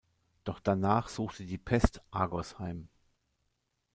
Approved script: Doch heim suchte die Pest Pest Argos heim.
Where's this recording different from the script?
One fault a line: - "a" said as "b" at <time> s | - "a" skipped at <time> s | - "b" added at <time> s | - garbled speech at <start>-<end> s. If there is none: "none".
- "heim" said as "danach" at 0.6 s
- "Pest" skipped at 2.0 s